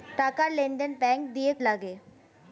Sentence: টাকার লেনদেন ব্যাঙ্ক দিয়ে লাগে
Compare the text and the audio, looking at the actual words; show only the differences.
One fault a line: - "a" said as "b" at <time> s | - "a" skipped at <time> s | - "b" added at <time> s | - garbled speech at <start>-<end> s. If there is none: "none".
none